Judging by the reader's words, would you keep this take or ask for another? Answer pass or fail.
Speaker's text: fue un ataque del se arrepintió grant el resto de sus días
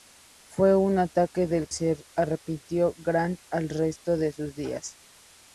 pass